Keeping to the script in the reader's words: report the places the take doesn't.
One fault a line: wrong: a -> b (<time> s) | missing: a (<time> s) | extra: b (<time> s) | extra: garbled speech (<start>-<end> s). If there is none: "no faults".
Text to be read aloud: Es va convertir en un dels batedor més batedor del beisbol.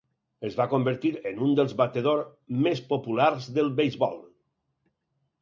wrong: batedor -> populars (2.9 s)